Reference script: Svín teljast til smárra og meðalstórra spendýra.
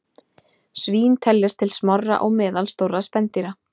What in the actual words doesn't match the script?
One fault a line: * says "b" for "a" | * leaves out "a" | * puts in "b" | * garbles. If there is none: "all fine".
all fine